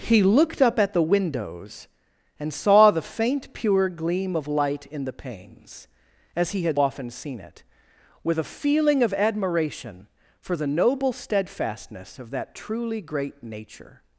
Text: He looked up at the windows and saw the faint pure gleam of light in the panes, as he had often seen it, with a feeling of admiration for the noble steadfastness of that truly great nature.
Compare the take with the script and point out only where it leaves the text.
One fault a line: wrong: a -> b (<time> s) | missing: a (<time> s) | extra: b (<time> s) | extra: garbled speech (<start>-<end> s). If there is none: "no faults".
no faults